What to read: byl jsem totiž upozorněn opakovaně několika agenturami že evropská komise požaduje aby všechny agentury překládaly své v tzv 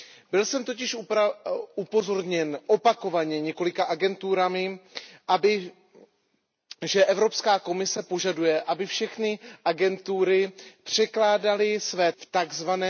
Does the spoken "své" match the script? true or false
true